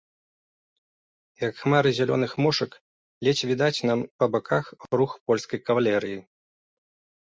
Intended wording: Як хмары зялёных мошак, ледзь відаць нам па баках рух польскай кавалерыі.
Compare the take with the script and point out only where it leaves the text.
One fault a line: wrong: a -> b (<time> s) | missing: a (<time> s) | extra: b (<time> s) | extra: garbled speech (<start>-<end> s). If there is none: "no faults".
no faults